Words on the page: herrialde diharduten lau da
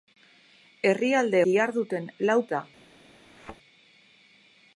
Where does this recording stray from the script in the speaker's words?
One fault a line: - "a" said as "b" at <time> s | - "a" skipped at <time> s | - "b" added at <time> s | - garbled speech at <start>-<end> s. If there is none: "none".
none